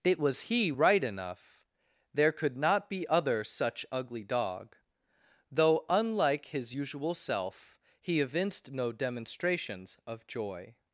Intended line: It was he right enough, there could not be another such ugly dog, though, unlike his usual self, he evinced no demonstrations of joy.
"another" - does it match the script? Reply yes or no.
no